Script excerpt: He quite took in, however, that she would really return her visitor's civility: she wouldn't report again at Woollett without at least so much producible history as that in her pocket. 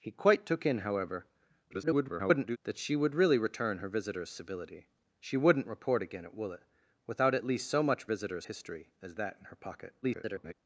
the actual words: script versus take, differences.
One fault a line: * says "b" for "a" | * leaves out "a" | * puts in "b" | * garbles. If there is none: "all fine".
* garbles
* says "visitor's" for "producible"
* garbles